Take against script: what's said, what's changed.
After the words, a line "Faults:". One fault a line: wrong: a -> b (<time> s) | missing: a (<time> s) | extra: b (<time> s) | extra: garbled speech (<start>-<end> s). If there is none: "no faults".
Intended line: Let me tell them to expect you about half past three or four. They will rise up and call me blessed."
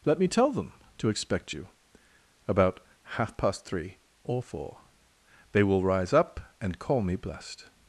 Let me tell them to expect you about half past three or four. They will rise up and call me blessed."
Faults:
no faults